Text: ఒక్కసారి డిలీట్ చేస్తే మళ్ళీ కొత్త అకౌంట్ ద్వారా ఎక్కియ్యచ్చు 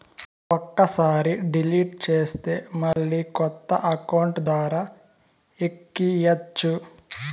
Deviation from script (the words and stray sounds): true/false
true